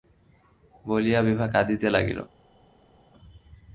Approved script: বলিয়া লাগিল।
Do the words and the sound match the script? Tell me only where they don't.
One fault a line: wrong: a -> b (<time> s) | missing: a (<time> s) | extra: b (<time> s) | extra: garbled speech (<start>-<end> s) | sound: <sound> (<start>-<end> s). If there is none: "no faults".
extra: বিভা কাঁদিতে (1.2 s)